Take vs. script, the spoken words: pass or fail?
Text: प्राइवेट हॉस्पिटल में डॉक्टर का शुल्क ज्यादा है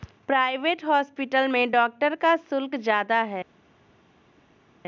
pass